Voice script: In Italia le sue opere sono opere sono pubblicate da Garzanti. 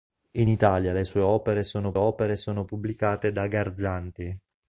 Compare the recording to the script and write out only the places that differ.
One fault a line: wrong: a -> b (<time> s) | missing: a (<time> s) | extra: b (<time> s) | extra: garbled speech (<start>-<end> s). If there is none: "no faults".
no faults